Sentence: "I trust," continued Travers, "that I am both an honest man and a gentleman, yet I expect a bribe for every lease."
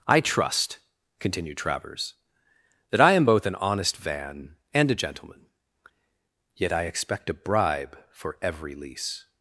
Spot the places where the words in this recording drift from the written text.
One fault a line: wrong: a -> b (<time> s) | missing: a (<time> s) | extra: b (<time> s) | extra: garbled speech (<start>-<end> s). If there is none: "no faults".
wrong: man -> van (4.0 s)